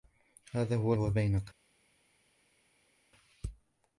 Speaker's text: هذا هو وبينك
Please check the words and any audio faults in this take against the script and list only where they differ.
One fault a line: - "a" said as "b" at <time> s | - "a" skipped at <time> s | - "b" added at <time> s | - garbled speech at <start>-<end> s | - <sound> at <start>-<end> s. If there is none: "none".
none